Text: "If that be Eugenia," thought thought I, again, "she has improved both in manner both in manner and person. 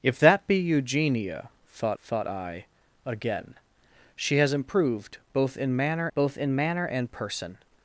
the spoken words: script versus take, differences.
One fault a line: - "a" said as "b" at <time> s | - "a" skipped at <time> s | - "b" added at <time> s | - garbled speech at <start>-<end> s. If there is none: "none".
none